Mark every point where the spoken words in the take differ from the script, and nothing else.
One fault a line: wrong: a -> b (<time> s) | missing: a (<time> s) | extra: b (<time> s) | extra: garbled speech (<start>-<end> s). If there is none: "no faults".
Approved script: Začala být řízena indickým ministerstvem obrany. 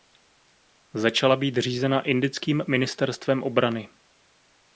no faults